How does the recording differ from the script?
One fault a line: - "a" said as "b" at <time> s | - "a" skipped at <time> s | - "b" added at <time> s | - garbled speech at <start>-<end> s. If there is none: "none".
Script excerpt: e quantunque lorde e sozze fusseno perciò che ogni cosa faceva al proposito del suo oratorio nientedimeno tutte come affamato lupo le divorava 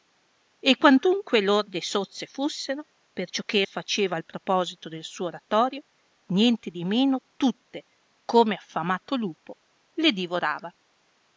- "ogni cosa" skipped at 3.7 s